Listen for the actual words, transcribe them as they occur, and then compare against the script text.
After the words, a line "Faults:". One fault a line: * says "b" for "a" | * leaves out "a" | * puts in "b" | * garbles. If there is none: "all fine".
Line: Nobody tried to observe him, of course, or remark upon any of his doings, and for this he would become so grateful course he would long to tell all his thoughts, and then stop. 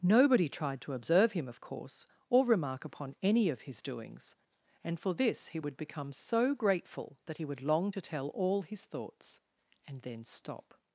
Nobody tried to observe him, of course, or remark upon any of his doings, and for this he would become so grateful that he would long to tell all his thoughts, and then stop.
Faults:
* says "that" for "course"